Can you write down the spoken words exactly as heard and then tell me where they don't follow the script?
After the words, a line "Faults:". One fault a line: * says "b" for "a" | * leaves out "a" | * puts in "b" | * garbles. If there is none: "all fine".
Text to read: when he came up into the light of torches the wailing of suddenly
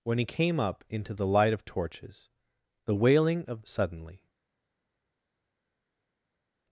when he came up into the light of torches the wailing of suddenly
Faults:
all fine